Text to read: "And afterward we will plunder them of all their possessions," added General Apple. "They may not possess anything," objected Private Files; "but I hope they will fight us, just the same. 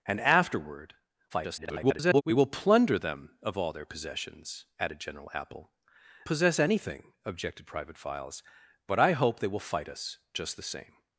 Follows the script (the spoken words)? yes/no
no